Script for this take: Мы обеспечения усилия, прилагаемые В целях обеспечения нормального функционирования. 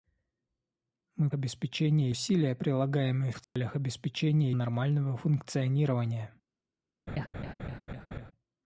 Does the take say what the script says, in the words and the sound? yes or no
no